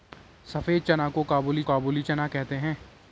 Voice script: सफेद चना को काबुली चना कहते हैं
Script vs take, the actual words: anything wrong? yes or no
yes